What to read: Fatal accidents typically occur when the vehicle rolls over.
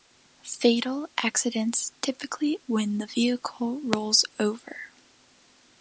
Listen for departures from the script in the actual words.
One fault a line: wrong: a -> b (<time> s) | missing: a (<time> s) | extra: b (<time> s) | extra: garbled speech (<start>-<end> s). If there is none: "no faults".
missing: occur (2.6 s)